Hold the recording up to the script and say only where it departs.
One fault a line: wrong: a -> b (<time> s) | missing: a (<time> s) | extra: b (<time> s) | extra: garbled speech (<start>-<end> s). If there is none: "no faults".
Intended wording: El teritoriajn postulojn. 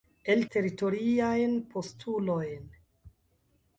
no faults